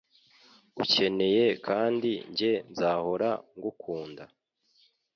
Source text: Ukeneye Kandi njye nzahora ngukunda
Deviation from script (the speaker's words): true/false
false